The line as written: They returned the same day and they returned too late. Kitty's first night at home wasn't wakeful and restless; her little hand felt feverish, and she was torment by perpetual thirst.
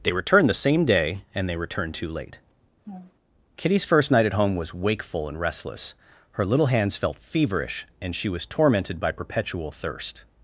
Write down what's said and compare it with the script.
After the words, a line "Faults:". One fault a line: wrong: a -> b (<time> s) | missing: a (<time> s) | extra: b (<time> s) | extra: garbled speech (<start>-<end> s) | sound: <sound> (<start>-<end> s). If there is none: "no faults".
They returned the same day and they returned too late. Kitty's first night at home was wakeful and restless; her little hands felt feverish, and she was tormented by perpetual thirst.
Faults:
sound: laugh (2.8-3.1 s)
wrong: wasn't -> was (4.6 s)
wrong: hand -> hands (6.7 s)
wrong: torment -> tormented (8.5 s)